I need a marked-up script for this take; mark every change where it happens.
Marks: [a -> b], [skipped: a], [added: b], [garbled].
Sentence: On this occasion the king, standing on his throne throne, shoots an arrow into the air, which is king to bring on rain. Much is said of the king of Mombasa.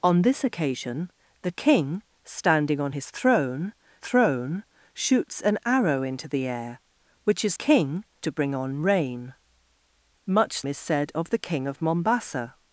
On this occasion the king, standing on his throne throne, shoots an arrow into the air, which is king to bring on rain. Much is said of the king of Mombasa.